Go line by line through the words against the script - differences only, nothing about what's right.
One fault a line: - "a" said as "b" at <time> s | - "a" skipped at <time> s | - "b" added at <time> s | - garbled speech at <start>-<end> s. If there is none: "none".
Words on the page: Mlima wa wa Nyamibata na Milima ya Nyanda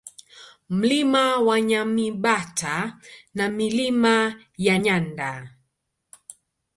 - "wa" skipped at 1.6 s